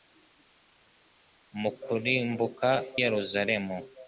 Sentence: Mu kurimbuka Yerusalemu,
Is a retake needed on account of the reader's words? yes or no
no